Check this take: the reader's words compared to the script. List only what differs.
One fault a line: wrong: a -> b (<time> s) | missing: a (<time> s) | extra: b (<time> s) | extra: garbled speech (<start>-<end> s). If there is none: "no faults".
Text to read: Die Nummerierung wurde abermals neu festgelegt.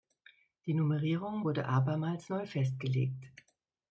no faults